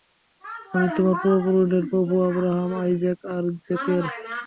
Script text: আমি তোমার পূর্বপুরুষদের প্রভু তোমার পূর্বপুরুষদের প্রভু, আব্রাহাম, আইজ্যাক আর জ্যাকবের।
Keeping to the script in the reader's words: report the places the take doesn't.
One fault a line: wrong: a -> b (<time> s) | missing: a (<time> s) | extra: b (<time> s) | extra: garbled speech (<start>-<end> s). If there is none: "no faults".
missing: তোমার পূর্বপুরুষদের প্রভু (2.1 s)